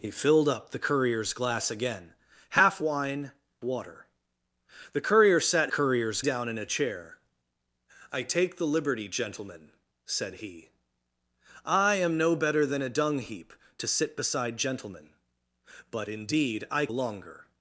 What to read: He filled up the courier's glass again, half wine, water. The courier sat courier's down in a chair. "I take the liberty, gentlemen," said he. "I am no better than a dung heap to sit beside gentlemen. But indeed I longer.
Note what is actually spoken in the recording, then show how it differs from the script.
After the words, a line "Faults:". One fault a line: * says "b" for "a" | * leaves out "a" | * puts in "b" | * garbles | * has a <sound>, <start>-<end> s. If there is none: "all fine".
He filled up the courier's glass again, half wine, water. The courier sat courier's down in a chair. "I take the liberty, gentlemen," said he. "I am no better than a dung heap to sit beside gentlemen. But indeed I longer.
Faults:
all fine